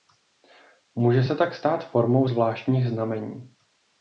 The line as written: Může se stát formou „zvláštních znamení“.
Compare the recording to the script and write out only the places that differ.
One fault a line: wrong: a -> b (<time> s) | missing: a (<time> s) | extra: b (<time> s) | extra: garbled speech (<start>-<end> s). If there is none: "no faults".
extra: tak (1.4 s)